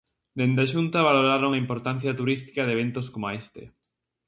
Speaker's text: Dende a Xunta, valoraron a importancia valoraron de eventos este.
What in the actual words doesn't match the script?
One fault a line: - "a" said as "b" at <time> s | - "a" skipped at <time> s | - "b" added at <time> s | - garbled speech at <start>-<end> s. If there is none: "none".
- "valoraron" said as "turística" at 2.2 s
- "coma" added at 3.1 s